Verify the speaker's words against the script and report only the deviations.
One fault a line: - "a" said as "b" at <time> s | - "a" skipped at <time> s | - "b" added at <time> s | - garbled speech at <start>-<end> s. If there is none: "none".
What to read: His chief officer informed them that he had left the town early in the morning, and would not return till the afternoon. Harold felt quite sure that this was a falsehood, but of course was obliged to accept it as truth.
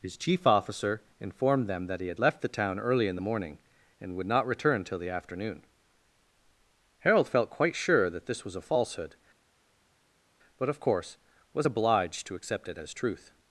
none